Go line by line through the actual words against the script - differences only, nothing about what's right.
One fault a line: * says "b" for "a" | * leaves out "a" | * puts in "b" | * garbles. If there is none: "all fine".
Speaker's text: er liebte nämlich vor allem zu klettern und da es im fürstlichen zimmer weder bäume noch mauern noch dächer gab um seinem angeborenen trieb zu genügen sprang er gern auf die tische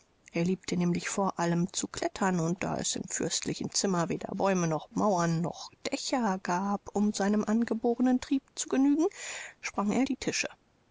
* leaves out "gern auf"